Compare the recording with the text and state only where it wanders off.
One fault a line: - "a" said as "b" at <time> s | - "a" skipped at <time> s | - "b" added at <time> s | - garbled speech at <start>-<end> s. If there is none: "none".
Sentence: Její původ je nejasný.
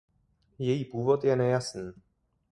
none